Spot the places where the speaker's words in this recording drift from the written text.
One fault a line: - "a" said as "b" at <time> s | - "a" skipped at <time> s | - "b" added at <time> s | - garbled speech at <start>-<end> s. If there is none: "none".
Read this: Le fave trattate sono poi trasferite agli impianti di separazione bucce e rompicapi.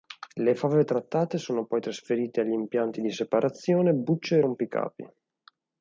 none